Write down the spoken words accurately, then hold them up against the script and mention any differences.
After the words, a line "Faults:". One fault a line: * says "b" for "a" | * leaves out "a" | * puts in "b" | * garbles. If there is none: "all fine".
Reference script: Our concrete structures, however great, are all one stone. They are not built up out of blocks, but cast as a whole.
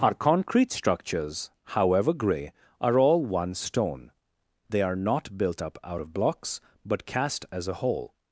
Our concrete structures, however grey, are all one stone. They are not built up out of blocks, but cast as a whole.
Faults:
* says "grey" for "great"